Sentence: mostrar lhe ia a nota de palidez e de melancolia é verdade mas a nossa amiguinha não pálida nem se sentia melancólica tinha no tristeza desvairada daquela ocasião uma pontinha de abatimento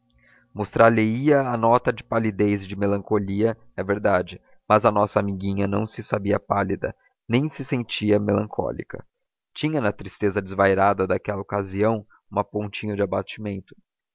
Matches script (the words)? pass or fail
fail